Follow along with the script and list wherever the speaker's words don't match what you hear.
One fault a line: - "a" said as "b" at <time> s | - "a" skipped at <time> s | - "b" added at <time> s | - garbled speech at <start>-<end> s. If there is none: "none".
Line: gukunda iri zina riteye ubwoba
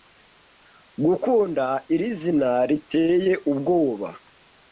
none